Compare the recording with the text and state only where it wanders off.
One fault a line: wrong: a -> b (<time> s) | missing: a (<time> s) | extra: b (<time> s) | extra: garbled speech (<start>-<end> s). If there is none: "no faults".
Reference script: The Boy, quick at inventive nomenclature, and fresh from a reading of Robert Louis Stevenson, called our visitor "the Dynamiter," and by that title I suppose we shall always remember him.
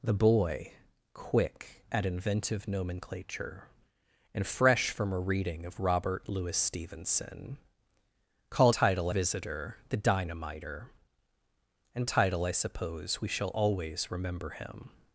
wrong: our -> title (8.7 s)
missing: by that (12.0 s)